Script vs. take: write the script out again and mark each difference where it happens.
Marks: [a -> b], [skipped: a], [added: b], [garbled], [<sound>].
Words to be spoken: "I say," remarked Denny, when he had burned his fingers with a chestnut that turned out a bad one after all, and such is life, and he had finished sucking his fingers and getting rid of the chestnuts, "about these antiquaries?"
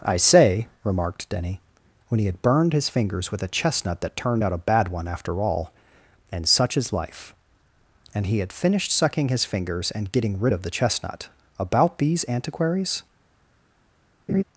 "I say," remarked Denny, when he had burned his fingers with a chestnut that turned out a bad one after all, and such is life, and he had finished sucking his fingers and getting rid of the [chestnuts, -> chestnut] "about these antiquaries?" [laugh]